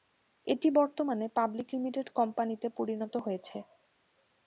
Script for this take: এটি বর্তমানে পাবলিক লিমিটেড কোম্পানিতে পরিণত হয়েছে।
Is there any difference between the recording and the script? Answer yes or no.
no